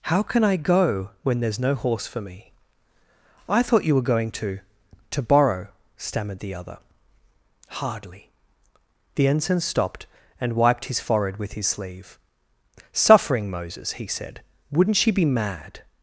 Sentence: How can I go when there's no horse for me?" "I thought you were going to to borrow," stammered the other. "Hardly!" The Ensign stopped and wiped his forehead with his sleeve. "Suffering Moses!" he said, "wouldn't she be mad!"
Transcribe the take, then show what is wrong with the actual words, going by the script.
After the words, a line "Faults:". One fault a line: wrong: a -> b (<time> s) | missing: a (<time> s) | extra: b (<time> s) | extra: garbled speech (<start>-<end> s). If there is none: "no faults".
How can I go when there's no horse for me?" "I thought you were going to to borrow," stammered the other. "Hardly!" The Ensign stopped and wiped his forehead with his sleeve. "Suffering Moses!" he said, "wouldn't she be mad!"
Faults:
no faults